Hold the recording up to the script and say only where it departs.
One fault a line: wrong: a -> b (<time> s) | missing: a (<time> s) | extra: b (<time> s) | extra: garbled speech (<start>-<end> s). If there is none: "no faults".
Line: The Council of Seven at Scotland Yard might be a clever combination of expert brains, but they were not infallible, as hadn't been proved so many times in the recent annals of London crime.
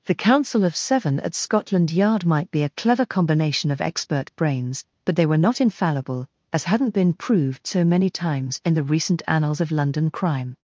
no faults